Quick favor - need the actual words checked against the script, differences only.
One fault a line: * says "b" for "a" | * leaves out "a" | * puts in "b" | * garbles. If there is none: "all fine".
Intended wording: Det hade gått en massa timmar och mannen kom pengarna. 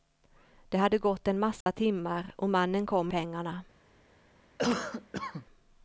all fine